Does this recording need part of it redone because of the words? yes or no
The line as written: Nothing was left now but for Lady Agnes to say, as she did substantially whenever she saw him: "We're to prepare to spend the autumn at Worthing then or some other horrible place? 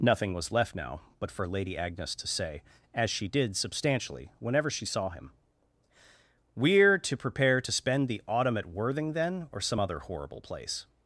no